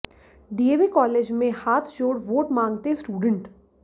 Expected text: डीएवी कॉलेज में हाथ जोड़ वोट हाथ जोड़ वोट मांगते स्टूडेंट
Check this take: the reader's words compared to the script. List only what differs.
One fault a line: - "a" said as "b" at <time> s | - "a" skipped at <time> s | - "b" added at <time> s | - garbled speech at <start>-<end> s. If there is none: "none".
- "हाथ जोड़ वोट" skipped at 2.5 s